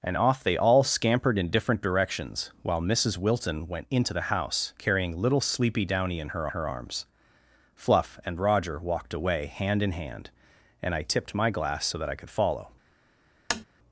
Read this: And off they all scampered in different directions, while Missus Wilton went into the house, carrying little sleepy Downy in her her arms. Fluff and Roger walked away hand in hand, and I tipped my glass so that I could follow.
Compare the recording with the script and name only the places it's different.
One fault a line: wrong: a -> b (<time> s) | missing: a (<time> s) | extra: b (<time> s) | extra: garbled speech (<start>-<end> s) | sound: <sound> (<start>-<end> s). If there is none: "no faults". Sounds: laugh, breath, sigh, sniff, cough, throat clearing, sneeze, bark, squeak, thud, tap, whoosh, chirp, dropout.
sound: tap (13.5-13.6 s)